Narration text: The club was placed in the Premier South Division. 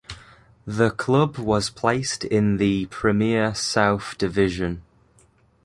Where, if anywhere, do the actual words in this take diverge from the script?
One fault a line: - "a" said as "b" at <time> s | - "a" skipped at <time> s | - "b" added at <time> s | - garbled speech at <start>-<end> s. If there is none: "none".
none